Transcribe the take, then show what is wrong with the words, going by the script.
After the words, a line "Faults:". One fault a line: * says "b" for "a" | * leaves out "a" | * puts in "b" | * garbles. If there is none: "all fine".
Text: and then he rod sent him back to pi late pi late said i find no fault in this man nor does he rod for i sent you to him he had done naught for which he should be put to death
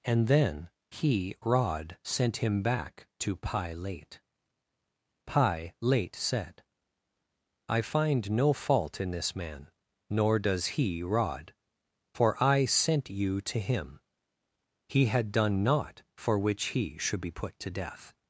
and then he rod sent him back to pi late pi late said i find no fault in this man nor does he rod for i sent you to him he had done naught for which he should be put to death
Faults:
all fine